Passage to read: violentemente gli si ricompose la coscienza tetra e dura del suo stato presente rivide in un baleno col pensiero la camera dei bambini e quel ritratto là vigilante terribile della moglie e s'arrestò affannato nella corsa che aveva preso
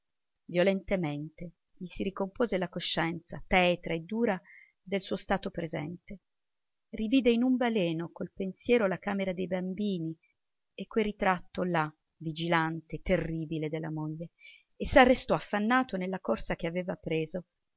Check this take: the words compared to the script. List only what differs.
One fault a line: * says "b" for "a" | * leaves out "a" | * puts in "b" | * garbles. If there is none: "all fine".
all fine